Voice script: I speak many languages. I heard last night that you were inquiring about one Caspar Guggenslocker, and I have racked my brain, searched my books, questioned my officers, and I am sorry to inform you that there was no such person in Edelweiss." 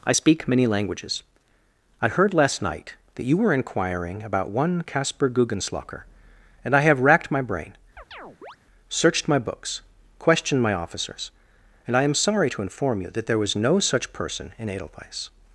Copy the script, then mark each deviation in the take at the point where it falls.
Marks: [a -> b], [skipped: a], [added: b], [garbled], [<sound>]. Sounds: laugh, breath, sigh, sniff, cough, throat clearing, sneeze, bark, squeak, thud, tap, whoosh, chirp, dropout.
I speak many languages. I heard last night that you were inquiring about one Caspar Guggenslocker, and I have racked my brain, [chirp] searched my books, questioned my officers, and I am sorry to inform you that there was no such person in Edelweiss."